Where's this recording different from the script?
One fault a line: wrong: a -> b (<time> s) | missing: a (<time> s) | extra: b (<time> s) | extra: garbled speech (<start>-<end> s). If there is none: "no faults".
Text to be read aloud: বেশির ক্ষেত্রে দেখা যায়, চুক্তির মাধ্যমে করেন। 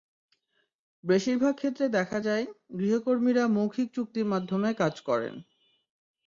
extra: ভাগ (1.4 s)
extra: গৃহকর্মীরা মৌখিক (2.8 s)
extra: কাজ (4.7 s)